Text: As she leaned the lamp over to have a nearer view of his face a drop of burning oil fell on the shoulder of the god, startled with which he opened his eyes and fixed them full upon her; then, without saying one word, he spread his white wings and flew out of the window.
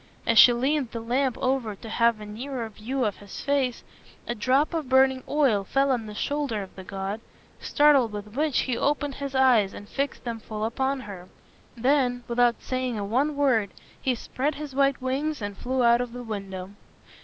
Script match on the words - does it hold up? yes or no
yes